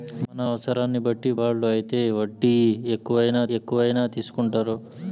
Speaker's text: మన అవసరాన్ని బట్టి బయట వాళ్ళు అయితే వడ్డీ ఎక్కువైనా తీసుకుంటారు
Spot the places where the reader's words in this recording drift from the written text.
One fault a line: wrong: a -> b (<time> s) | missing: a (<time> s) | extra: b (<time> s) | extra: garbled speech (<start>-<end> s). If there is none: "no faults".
missing: బయట (1.3 s)
extra: ఎక్కువైనా (3.6 s)